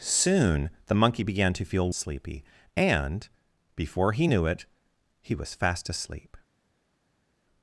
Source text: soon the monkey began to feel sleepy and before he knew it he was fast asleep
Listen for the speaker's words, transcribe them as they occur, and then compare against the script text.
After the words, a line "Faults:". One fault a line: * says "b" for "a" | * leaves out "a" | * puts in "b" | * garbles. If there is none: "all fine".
soon the monkey began to feel sleepy and before he knew it he was fast asleep
Faults:
all fine